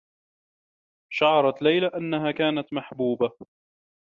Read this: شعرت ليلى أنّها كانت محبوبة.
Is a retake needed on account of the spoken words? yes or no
no